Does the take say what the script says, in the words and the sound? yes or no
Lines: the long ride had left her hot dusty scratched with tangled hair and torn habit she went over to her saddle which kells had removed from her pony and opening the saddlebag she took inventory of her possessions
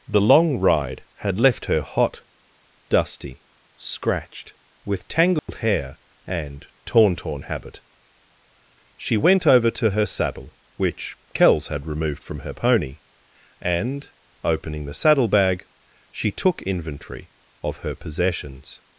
no